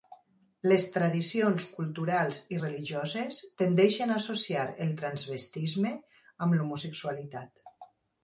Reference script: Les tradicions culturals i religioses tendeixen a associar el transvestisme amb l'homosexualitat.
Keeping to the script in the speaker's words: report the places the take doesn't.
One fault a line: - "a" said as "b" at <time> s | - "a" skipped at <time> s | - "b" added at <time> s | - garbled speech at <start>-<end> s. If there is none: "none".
none